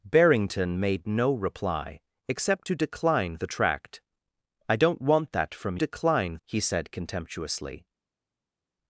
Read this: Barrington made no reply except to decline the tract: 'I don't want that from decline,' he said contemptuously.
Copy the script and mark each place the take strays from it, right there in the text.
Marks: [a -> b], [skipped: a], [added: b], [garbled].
Barrington made no reply except to decline the tract: 'I don't want that from decline,' he said contemptuously.